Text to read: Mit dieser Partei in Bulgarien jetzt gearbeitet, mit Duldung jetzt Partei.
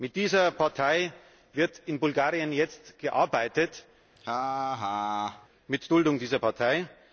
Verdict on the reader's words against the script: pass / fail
fail